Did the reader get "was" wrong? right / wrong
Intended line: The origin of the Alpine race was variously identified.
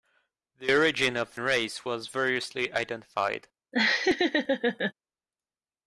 right